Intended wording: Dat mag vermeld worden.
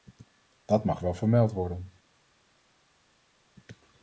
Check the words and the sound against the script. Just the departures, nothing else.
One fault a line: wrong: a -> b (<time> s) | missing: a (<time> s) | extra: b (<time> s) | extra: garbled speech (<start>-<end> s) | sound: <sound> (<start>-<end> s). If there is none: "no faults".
extra: wel (1.0 s)